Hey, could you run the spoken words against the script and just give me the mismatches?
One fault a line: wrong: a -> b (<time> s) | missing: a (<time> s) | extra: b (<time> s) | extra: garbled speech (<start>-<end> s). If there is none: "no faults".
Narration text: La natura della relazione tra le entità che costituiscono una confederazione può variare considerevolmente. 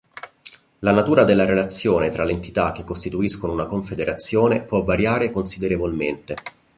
no faults